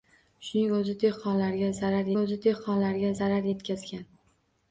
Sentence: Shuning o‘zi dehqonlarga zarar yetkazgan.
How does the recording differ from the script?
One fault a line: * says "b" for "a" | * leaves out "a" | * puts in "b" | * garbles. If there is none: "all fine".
* puts in "o‘zi dehqonlarga zarar"